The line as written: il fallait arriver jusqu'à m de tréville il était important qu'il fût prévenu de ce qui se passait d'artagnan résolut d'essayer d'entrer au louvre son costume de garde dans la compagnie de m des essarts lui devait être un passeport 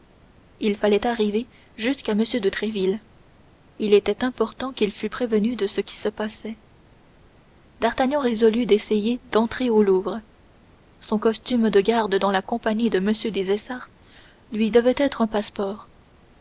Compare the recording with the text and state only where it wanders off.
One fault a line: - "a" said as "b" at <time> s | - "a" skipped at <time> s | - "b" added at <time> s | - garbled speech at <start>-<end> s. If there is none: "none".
none